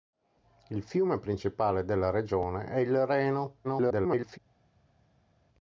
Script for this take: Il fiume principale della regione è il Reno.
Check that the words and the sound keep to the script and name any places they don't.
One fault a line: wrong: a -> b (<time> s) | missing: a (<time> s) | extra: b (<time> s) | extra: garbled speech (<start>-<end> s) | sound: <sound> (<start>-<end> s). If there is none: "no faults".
extra: garbled speech (3.6-4.4 s)